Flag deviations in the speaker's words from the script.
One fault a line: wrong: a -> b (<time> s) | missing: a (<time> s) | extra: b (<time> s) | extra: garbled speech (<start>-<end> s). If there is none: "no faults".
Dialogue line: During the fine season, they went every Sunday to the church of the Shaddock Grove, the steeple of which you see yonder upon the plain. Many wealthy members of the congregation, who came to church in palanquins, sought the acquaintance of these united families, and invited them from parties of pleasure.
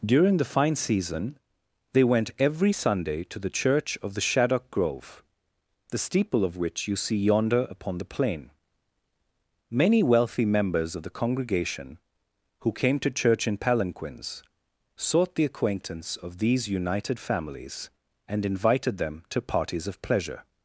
wrong: from -> to (19.3 s)